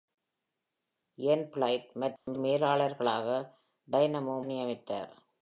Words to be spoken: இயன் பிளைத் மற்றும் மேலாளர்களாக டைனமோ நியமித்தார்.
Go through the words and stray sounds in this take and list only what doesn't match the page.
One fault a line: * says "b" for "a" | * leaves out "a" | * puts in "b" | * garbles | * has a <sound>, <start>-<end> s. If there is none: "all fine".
* has a dropout, 2.2-2.3 s